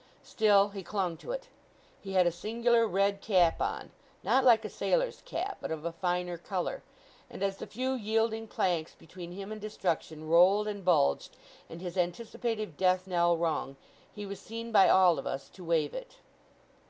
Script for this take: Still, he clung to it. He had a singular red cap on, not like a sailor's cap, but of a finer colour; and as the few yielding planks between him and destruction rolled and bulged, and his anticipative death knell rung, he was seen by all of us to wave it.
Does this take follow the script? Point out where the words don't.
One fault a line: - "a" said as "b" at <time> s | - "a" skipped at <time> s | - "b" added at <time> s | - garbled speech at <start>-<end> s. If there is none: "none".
none